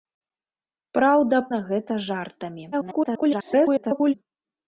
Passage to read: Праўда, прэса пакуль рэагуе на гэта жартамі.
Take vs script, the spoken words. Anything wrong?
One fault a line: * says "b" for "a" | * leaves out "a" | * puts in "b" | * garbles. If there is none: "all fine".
* leaves out "прэса пакуль рэагуе"
* garbles